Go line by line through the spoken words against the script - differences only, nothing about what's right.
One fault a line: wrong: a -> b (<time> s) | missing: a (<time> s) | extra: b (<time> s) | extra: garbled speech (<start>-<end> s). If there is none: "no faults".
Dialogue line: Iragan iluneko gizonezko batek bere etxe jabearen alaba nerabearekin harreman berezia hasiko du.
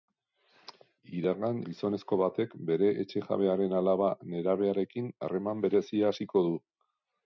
missing: iluneko (1.6 s)